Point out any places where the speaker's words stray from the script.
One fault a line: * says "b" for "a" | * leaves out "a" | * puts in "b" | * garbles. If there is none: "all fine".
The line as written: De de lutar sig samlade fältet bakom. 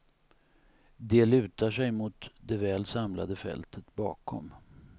* leaves out "de"
* puts in "mot det väl"